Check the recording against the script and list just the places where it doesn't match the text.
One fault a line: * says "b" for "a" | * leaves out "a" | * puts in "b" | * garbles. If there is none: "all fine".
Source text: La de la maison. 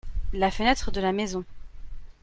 * puts in "fenêtre"